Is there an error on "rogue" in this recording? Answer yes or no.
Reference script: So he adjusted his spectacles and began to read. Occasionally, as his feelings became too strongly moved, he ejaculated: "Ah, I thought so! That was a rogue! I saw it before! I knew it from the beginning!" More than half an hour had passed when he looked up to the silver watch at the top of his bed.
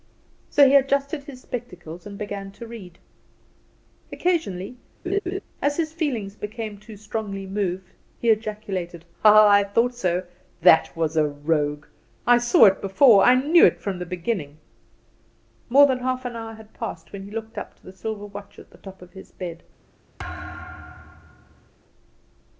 no